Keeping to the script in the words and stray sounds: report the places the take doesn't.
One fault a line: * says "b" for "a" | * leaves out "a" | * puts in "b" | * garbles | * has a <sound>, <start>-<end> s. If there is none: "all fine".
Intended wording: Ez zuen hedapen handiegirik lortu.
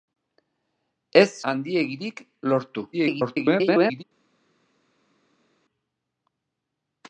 * leaves out "zuen hedapen"
* garbles